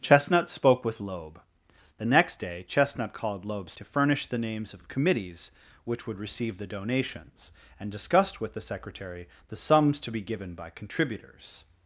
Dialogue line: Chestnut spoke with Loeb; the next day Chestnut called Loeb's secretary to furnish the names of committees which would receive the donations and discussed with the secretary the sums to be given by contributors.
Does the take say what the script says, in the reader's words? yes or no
no